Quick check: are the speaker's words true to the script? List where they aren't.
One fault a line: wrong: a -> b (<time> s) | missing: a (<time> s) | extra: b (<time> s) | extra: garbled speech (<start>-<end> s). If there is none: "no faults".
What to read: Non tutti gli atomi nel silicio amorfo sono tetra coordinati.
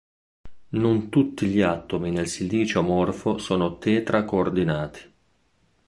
no faults